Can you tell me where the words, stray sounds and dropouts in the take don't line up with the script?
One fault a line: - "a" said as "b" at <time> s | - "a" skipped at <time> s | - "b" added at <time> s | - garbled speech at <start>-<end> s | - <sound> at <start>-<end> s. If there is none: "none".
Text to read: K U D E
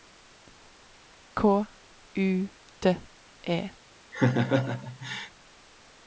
- laugh at 4.1-5.3 s